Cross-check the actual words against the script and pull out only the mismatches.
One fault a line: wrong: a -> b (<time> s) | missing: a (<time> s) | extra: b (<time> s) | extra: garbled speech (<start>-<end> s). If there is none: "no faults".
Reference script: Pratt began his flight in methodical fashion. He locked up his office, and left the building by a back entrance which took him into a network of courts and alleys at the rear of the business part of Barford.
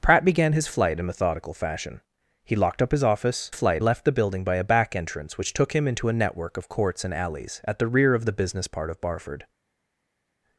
wrong: and -> flight (3.5 s)